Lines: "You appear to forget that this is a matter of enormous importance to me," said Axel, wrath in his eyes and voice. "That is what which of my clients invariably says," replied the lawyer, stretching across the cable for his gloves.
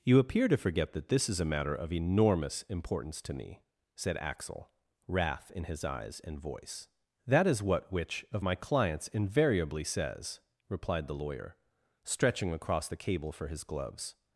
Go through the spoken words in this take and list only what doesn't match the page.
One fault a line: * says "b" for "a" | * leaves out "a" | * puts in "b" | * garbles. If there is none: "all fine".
all fine